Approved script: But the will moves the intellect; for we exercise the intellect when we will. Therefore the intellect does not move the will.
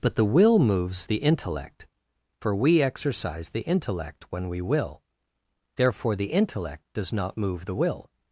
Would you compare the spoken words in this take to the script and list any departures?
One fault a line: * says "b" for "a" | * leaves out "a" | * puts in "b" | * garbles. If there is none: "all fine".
all fine